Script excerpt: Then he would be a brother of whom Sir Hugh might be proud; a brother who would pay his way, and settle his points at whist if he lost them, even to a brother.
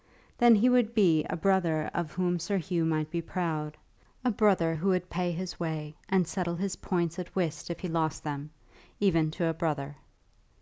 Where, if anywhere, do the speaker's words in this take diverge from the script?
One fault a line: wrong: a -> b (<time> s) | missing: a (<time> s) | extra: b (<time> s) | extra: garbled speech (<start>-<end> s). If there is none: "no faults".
no faults